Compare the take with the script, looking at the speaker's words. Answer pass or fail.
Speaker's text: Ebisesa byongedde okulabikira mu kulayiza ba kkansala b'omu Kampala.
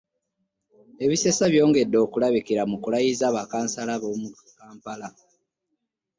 pass